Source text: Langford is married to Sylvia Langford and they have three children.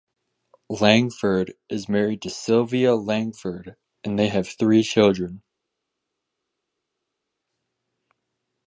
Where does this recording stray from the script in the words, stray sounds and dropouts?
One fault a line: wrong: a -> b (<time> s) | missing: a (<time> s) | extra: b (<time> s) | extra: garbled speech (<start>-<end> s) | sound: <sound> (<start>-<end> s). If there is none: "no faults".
no faults